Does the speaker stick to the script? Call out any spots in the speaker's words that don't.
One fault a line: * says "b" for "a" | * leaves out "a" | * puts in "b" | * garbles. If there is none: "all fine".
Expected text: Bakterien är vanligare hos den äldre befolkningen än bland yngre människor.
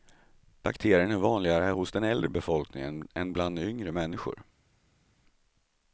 all fine